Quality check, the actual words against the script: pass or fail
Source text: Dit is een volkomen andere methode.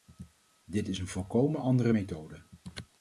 pass